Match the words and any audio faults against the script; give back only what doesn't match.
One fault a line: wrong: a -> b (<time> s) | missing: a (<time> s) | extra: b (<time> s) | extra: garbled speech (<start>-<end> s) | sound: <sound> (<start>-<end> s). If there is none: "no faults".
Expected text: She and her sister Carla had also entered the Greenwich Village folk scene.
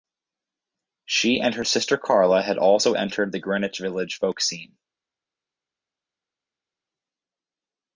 no faults